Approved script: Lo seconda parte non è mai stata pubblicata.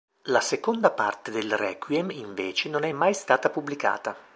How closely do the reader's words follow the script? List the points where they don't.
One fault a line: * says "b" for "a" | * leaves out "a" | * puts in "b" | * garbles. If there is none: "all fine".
* says "La" for "Lo"
* puts in "del requiem invece"